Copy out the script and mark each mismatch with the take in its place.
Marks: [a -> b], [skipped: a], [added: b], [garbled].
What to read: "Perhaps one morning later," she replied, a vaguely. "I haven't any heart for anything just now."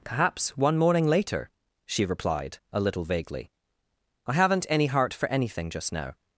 "Perhaps one morning later," she replied, a [added: little] vaguely. "I haven't any heart for anything just now."